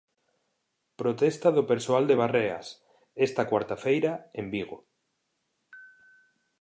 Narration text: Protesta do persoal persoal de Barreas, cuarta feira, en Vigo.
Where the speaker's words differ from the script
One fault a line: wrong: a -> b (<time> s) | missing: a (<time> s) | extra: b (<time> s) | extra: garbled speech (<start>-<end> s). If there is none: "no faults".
missing: persoal (2.0 s)
extra: esta (3.3 s)